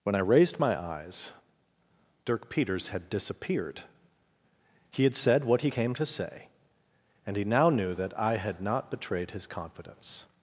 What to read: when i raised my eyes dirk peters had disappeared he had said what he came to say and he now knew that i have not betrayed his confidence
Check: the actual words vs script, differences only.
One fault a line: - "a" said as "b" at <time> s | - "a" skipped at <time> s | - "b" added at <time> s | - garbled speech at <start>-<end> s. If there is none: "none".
- "have" said as "had" at 8.4 s